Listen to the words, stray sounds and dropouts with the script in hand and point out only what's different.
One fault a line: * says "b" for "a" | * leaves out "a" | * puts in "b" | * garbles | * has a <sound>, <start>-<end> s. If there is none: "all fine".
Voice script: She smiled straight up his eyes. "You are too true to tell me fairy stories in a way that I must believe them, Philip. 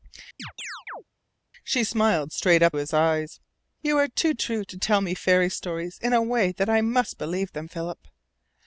* has a chirp, 0.4-1.0 s